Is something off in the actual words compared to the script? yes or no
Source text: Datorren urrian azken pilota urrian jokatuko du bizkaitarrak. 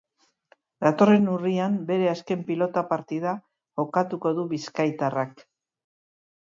yes